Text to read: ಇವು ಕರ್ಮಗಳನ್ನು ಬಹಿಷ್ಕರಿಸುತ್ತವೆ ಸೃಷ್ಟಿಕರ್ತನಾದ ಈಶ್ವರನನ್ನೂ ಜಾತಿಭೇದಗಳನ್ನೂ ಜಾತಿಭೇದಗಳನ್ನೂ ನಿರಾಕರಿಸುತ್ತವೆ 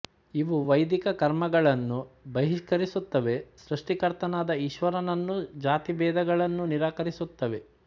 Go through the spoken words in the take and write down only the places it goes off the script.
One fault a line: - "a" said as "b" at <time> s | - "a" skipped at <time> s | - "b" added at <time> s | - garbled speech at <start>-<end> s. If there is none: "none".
- "ವೈದಿಕ" added at 0.7 s
- "ಜಾತಿಭೇದಗಳನ್ನೂ" skipped at 6.7 s